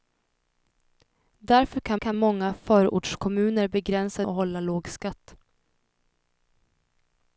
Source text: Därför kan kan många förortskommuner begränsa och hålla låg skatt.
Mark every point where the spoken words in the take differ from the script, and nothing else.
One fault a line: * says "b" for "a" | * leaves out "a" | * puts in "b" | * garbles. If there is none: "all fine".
all fine